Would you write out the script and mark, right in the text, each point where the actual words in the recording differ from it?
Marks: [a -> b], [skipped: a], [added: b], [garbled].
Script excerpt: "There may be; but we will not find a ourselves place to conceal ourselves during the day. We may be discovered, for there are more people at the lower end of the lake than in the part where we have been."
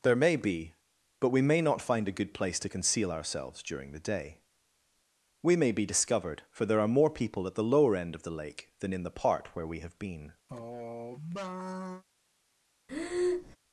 "There may be; but we [will -> may] not find a [ourselves -> good] place to conceal ourselves during the day. We may be discovered, for there are more people at the lower end of the lake than in the part where we have been."